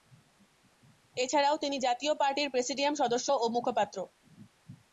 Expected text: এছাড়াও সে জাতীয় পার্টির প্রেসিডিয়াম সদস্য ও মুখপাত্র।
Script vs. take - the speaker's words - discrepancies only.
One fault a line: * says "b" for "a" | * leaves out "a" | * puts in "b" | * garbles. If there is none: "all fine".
* says "তিনি" for "সে"